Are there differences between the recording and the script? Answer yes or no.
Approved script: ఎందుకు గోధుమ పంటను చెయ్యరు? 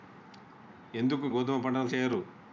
no